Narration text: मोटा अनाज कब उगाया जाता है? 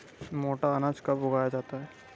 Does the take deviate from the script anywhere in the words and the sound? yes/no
no